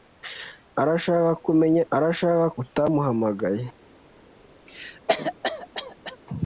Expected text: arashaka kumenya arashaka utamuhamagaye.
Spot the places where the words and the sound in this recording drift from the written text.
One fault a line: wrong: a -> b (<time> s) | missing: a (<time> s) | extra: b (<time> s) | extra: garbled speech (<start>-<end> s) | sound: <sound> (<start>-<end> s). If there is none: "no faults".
sound: cough (4.7-6.2 s)